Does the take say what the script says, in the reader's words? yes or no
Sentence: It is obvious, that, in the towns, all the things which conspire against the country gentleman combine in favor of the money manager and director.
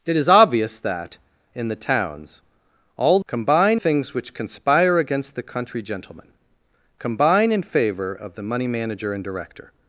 no